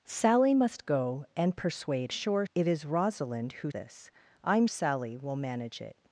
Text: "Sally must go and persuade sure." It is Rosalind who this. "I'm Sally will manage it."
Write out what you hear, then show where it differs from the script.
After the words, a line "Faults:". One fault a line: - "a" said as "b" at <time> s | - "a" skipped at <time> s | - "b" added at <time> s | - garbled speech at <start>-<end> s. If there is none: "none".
"Sally must go and persuade sure." It is Rosalind who this. "I'm Sally will manage it."
Faults:
none